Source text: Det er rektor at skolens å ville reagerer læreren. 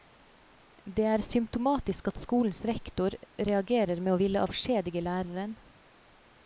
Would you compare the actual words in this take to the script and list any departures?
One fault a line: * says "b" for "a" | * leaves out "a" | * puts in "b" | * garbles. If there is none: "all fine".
* says "symptomatisk" for "rektor"
* puts in "rektor reagerer med"
* says "avskjedige" for "reagerer"